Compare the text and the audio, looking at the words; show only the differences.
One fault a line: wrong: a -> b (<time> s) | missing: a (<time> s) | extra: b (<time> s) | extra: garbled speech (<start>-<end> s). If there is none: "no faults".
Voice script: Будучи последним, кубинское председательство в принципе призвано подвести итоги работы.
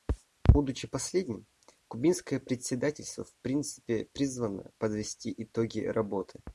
no faults